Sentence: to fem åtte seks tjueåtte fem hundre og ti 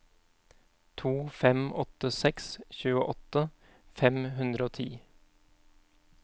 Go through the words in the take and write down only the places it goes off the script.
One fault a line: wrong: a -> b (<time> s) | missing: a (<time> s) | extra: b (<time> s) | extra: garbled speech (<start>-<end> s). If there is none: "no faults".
no faults